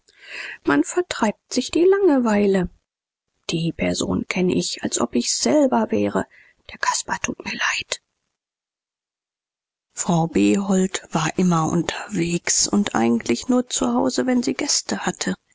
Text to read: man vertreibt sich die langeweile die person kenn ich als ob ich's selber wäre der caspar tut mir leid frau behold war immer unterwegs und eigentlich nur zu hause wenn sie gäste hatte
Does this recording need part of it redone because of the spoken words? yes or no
no